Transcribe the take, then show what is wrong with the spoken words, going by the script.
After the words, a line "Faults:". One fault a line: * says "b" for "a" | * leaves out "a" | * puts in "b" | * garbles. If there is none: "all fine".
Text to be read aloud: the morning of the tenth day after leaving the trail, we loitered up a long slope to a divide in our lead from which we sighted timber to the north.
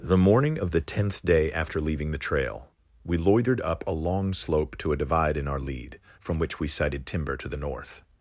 the morning of the tenth day after leaving the trail, we loitered up a long slope to a divide in our lead from which we sighted timber to the north.
Faults:
all fine